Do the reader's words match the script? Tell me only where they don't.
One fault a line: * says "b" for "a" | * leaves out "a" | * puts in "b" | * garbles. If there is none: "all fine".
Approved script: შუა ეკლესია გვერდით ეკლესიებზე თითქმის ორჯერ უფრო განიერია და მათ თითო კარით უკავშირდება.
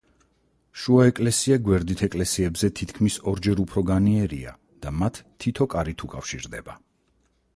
all fine